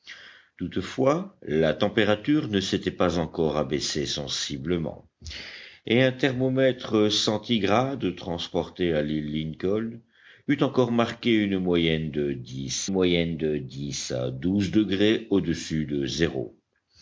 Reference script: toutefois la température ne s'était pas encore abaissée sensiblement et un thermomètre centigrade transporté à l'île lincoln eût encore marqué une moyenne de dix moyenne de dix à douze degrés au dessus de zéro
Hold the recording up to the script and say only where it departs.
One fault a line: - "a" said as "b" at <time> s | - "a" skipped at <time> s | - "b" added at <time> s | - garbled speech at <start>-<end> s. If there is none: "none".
none